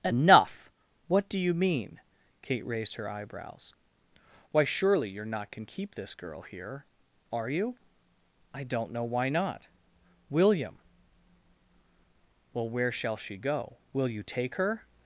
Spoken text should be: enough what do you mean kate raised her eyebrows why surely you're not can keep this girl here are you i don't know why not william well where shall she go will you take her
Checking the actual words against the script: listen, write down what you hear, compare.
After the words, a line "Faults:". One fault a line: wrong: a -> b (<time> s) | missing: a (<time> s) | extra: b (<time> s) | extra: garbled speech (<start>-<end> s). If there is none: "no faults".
enough what do you mean kate raised her eyebrows why surely you're not can keep this girl here are you i don't know why not william well where shall she go will you take her
Faults:
no faults